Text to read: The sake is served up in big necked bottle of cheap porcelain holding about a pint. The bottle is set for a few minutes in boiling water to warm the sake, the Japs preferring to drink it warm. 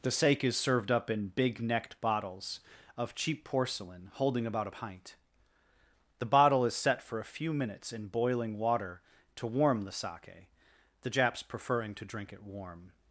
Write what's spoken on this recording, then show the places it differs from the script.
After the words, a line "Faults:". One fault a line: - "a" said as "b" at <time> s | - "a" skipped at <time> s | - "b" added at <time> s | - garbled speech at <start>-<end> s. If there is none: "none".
The sake is served up in big necked bottles of cheap porcelain holding about a pint. The bottle is set for a few minutes in boiling water to warm the sake, the Japs preferring to drink it warm.
Faults:
- "bottle" said as "bottles" at 2.0 s